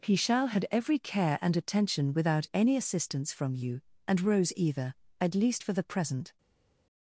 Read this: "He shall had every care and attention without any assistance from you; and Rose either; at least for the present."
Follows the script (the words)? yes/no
yes